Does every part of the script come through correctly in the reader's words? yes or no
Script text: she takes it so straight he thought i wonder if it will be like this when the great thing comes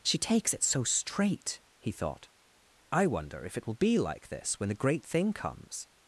yes